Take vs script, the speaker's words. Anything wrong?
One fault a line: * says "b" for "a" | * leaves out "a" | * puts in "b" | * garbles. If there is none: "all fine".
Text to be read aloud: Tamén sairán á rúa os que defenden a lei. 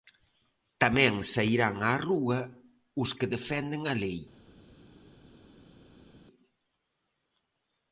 all fine